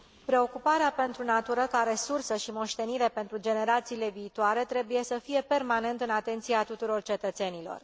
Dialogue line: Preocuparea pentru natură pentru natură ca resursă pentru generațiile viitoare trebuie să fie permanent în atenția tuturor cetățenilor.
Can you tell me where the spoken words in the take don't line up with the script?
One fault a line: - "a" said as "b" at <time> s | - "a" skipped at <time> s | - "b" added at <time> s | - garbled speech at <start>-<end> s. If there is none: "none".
- "pentru natură ca resursă" said as "ca resursă și moștenire" at 1.7 s